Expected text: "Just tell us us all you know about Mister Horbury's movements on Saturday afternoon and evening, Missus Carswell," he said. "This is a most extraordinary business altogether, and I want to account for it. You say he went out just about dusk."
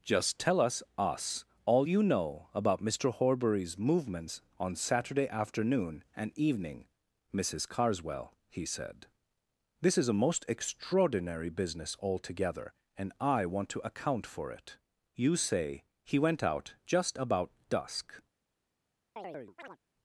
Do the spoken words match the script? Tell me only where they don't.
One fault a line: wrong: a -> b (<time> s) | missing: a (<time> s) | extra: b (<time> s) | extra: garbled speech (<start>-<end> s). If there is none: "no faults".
no faults